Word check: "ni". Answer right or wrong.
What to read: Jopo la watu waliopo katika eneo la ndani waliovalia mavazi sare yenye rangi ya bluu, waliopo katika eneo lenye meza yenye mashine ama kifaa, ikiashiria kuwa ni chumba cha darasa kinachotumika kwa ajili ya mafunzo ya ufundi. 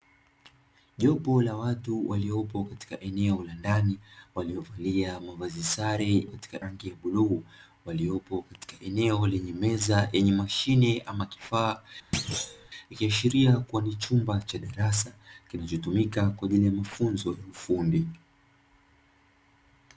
right